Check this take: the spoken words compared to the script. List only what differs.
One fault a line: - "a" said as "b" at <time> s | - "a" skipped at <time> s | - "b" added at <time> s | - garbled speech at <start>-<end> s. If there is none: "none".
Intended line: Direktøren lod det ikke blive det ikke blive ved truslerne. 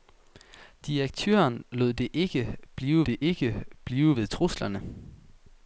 none